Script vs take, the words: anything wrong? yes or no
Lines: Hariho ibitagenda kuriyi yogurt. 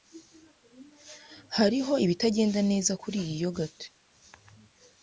yes